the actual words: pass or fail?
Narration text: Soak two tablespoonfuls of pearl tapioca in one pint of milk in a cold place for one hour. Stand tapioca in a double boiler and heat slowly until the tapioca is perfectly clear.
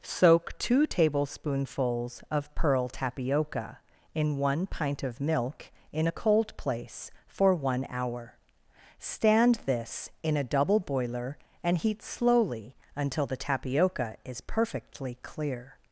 fail